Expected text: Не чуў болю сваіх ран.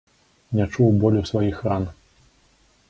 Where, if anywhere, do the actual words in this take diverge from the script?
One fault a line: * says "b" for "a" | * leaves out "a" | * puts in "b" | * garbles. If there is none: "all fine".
all fine